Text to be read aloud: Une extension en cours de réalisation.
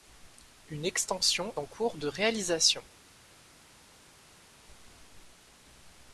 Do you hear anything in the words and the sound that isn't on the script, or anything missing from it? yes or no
no